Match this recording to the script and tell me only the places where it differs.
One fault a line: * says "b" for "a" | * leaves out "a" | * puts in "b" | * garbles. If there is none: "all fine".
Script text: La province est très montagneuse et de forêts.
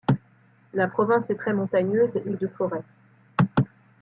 all fine